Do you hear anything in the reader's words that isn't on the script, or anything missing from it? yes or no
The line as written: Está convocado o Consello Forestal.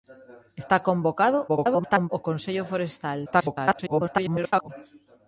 yes